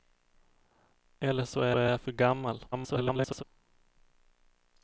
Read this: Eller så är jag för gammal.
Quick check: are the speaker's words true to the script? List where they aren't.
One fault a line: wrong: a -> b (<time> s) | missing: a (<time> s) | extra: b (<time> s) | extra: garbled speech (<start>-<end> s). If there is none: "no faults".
extra: är (1.7 s)
extra: garbled speech (2.7-3.4 s)